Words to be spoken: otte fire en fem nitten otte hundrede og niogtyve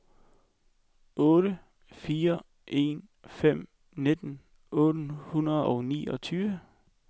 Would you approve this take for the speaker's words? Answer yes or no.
yes